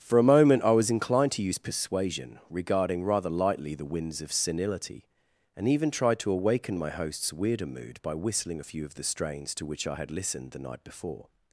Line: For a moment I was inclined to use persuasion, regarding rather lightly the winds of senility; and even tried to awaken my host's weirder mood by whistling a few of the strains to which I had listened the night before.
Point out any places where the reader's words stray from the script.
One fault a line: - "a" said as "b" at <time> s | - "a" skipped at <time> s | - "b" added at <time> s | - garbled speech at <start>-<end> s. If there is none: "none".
none